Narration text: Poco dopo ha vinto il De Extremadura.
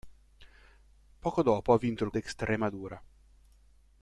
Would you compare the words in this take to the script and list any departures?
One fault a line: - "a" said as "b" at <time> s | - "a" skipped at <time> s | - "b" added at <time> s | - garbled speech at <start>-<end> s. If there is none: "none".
none